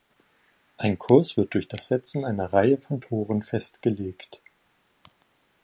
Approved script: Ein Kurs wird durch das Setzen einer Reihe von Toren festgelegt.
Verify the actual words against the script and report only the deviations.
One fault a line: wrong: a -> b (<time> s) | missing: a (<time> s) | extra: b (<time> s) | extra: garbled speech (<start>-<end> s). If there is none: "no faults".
no faults